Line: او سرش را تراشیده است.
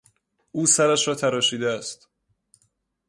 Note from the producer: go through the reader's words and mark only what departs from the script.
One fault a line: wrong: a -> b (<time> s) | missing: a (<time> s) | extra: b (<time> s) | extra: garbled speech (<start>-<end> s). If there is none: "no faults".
no faults